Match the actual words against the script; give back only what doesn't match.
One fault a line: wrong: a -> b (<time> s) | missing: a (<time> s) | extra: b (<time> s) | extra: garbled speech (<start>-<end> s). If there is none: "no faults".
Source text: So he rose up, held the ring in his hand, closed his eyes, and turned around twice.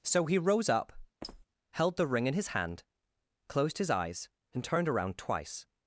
no faults